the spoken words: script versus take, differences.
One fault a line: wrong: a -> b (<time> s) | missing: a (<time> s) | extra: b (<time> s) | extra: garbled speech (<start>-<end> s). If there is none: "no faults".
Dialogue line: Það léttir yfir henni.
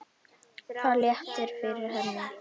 no faults